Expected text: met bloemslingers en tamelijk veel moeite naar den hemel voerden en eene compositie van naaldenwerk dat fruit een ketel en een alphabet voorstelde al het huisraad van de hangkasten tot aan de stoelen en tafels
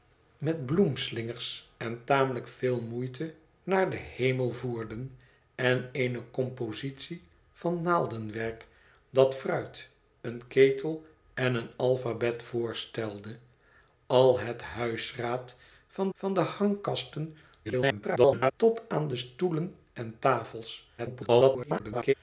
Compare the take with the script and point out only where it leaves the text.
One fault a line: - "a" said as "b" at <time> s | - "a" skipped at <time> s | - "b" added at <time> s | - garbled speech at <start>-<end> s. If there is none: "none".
- "van" added at 16.1 s
- garbled speech at 17.6-18.5 s
- garbled speech at 21.0-22.1 s